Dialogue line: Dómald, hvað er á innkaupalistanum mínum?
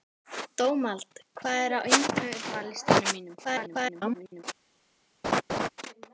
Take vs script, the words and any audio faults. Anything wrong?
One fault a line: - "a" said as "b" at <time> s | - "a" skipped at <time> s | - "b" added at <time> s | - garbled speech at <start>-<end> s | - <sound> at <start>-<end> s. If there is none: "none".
- garbled speech at 3.4-4.4 s
- laugh at 5.2-5.7 s